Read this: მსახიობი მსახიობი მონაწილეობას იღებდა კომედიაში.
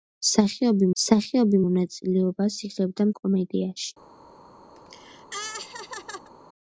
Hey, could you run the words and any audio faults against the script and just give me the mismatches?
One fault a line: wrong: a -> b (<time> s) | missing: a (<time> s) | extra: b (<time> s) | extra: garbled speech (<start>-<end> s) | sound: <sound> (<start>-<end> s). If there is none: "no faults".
sound: laugh (4.8-6.3 s)